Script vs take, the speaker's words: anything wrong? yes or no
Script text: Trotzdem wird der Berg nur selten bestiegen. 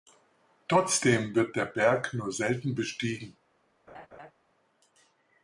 no